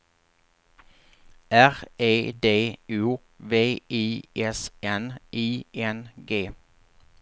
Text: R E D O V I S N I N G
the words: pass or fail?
pass